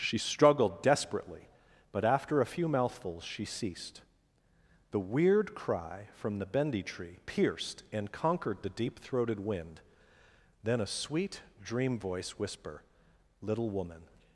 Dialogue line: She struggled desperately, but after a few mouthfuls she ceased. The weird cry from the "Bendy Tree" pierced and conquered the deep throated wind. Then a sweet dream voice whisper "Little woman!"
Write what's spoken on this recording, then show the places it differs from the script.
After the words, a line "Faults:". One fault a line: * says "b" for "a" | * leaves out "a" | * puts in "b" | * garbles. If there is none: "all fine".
She struggled desperately, but after a few mouthfuls she ceased. The weird cry from the "Bendy Tree" pierced and conquered the deep throated wind. Then a sweet dream voice whisper "Little woman!"
Faults:
all fine